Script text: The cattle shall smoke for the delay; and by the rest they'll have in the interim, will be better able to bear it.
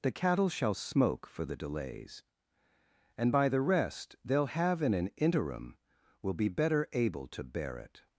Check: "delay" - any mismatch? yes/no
yes